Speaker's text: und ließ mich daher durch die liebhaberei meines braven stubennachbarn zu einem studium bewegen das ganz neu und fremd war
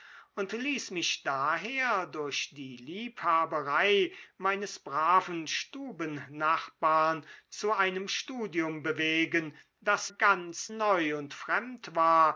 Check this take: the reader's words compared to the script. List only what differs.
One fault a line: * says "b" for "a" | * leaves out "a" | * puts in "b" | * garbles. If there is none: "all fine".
all fine